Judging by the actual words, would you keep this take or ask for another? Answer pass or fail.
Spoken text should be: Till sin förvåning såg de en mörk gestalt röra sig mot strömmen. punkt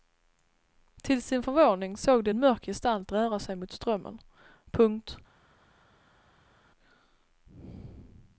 pass